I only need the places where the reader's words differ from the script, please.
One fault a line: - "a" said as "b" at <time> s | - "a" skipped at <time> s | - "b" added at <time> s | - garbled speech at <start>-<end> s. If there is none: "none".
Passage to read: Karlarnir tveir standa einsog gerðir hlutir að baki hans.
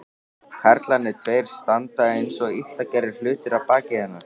- "illa" added at 2.6 s
- "hans" said as "hennar" at 4.0 s